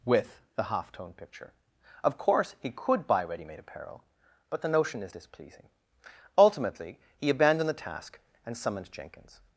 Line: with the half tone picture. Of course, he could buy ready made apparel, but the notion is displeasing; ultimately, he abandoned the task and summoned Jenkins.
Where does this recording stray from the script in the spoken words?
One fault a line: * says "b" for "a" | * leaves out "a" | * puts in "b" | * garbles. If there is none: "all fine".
all fine